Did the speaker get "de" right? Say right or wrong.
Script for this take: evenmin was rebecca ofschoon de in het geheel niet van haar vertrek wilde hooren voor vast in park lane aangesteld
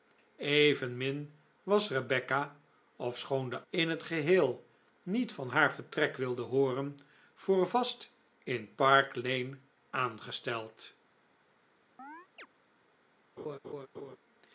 right